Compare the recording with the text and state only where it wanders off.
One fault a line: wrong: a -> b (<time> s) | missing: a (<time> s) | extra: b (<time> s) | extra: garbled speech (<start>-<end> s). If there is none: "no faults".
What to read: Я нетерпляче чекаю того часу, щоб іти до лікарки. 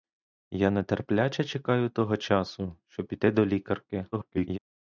extra: garbled speech (4.1-4.6 s)